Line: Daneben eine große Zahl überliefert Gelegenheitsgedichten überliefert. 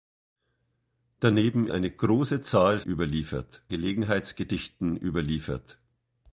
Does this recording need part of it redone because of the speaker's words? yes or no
no